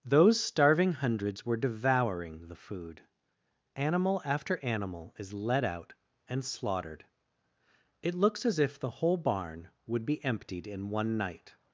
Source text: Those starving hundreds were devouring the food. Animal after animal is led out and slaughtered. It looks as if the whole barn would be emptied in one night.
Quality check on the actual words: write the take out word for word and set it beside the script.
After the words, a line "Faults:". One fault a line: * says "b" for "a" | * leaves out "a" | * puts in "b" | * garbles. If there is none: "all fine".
Those starving hundreds were devouring the food. Animal after animal is led out and slaughtered. It looks as if the whole barn would be emptied in one night.
Faults:
all fine